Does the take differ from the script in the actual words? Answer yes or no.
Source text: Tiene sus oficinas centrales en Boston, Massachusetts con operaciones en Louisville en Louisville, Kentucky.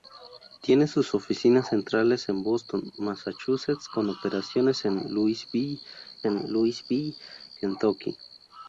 no